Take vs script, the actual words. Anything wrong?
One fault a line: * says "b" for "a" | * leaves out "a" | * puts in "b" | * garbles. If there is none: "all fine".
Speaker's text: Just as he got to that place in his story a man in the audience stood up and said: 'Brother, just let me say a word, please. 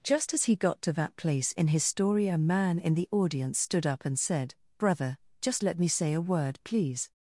all fine